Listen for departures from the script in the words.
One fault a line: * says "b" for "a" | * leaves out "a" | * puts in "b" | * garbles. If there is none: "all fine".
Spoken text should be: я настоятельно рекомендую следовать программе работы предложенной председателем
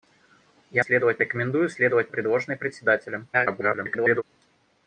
* says "следовать" for "настоятельно"
* leaves out "программе работы"
* garbles